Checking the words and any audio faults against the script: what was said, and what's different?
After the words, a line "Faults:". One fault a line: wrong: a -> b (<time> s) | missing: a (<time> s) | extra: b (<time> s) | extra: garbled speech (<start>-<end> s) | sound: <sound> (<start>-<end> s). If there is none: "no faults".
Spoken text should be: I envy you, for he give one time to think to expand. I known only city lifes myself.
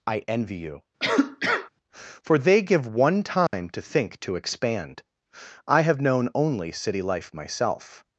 I envy you, for they give one time to think to expand. I have known only city life myself.
Faults:
sound: cough (1.0-1.7 s)
wrong: he -> they (2.4 s)
sound: dropout (3.5-3.5 s)
extra: have (5.8 s)
wrong: lifes -> life (7.0 s)